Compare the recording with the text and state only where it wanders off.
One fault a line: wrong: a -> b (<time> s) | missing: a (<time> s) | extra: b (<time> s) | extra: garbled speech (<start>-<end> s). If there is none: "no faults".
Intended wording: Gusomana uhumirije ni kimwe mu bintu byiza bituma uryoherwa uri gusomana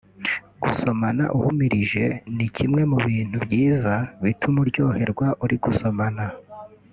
no faults